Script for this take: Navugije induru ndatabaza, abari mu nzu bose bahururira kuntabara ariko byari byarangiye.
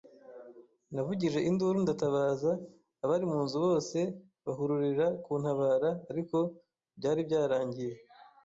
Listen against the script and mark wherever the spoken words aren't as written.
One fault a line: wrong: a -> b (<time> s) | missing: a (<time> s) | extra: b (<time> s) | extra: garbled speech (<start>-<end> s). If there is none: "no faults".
no faults